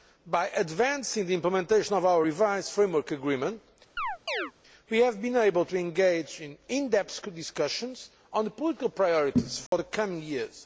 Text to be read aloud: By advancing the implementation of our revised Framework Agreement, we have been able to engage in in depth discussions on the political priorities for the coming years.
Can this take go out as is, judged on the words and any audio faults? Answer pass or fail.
fail